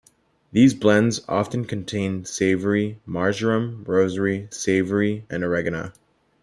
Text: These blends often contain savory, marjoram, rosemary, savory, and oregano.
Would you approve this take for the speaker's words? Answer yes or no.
yes